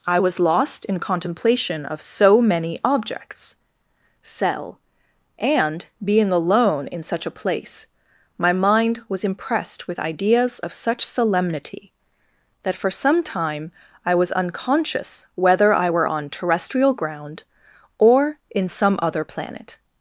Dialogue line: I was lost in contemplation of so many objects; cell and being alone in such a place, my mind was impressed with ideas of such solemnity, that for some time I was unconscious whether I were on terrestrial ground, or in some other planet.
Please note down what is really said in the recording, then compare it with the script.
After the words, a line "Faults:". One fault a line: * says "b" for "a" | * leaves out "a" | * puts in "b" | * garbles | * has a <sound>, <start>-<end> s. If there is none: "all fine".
I was lost in contemplation of so many objects; cell and being alone in such a place, my mind was impressed with ideas of such solemnity, that for some time I was unconscious whether I were on terrestrial ground, or in some other planet.
Faults:
all fine